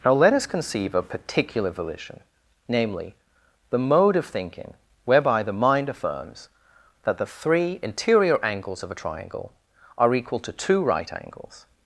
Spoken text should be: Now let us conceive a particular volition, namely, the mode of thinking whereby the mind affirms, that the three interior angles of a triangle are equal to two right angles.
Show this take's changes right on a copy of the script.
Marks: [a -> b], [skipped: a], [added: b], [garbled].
Now let us conceive a particular volition, namely, the mode of thinking whereby the mind affirms, that the three interior angles of a triangle are equal to two right angles.